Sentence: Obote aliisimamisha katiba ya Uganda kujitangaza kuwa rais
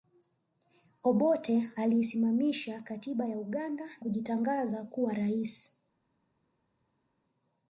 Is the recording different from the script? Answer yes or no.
no